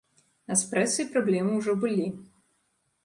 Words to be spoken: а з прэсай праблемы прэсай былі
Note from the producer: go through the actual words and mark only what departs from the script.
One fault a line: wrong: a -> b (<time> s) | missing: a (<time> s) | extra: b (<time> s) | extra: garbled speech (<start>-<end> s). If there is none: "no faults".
wrong: прэсай -> ўжо (1.6 s)